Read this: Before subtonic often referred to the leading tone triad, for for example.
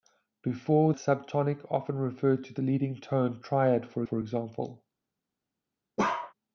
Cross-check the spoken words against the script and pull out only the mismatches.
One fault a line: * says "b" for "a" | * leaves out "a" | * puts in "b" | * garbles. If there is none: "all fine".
all fine